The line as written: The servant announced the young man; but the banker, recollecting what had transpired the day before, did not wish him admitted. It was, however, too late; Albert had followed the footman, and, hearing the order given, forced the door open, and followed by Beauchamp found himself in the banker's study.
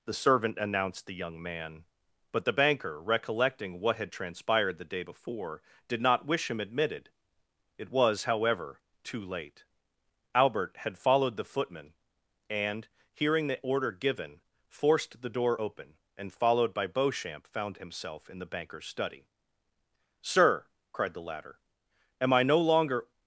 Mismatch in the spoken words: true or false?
true